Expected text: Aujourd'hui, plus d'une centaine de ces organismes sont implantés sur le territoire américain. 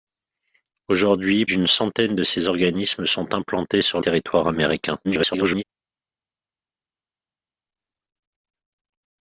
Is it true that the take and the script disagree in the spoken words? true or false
true